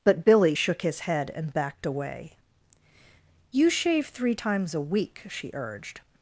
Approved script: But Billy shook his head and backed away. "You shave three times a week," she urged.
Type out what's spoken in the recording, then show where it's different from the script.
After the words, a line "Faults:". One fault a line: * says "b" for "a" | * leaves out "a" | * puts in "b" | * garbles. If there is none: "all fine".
But Billy shook his head and backed away. "You shave three times a week," she urged.
Faults:
all fine